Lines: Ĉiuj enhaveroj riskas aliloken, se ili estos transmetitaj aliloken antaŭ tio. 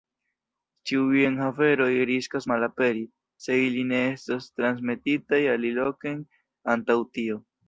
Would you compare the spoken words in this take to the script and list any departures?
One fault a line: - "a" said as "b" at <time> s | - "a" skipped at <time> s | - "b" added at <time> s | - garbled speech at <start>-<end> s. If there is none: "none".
- "aliloken" said as "malaperi" at 2.5 s
- "ne" added at 3.9 s